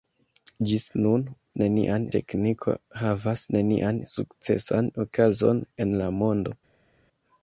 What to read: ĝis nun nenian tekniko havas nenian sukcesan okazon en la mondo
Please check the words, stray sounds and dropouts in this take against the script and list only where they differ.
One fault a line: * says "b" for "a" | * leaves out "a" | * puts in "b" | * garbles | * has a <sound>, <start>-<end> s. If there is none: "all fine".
all fine